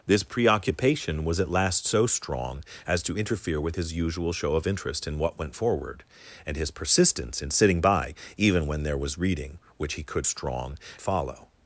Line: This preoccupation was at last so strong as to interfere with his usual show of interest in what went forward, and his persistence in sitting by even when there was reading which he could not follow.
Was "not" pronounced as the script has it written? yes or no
no